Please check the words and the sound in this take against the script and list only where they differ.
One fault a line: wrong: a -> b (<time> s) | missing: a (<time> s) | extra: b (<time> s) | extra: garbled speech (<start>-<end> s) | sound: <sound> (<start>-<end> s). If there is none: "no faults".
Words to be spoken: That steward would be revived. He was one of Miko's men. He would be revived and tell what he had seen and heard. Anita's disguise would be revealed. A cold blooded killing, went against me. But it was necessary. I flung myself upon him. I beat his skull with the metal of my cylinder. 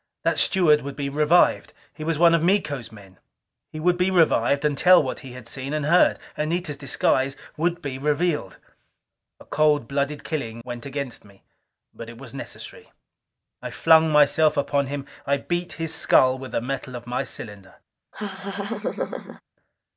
sound: laugh (18.1-19.4 s)